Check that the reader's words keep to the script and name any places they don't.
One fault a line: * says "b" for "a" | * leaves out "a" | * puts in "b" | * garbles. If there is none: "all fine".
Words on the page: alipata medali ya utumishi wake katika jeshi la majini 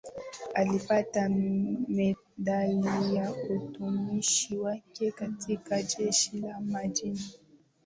all fine